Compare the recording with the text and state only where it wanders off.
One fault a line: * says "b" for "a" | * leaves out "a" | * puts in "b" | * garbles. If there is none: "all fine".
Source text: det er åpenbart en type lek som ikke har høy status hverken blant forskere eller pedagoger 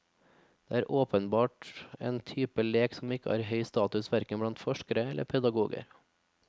all fine